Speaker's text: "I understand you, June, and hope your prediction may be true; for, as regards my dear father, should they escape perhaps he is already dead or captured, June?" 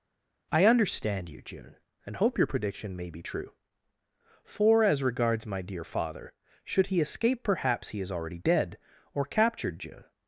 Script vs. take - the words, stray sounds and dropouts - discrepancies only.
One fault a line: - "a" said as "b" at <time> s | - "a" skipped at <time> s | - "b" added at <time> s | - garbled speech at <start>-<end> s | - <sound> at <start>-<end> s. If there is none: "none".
- "they" said as "he" at 6.9 s